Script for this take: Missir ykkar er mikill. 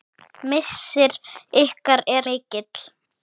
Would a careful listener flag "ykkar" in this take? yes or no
no